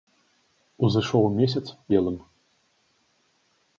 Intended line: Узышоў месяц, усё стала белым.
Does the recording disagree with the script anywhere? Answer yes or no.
yes